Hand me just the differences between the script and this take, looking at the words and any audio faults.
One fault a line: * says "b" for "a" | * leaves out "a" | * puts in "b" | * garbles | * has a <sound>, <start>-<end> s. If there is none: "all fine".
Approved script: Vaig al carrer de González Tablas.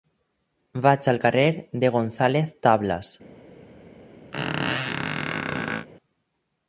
* has a squeak, 4.3-5.9 s